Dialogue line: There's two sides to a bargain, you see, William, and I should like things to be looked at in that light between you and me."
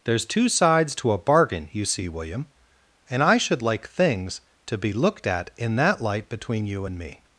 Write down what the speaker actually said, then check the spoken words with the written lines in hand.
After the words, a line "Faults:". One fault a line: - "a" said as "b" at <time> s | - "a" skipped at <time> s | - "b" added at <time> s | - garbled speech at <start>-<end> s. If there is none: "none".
There's two sides to a bargain, you see, William, and I should like things to be looked at in that light between you and me."
Faults:
none